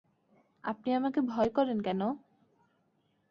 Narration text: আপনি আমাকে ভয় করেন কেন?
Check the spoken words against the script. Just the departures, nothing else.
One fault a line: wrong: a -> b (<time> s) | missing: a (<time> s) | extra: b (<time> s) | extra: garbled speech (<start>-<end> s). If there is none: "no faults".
no faults